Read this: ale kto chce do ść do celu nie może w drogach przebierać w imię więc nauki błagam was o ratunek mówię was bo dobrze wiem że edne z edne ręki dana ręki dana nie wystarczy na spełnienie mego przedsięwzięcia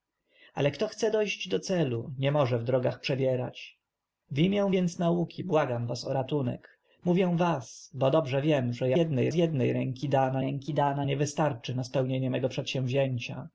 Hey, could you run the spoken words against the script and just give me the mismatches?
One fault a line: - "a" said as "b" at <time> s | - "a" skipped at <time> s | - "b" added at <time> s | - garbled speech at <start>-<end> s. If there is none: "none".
none